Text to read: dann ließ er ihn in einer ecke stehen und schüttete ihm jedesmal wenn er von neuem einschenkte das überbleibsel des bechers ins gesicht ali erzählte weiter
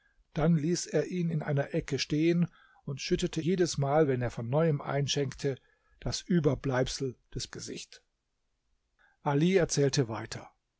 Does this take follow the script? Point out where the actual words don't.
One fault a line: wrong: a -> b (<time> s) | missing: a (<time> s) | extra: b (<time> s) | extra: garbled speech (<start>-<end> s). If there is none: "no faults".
missing: ihm (3.4 s)
missing: bechers ins (7.5 s)